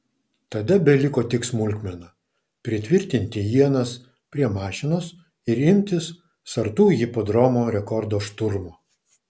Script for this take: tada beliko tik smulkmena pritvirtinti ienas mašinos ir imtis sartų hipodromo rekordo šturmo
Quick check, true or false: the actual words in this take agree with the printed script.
false